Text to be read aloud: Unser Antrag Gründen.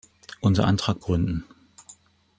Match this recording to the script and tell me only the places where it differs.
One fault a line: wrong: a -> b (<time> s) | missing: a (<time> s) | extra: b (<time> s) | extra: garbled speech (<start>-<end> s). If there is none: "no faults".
no faults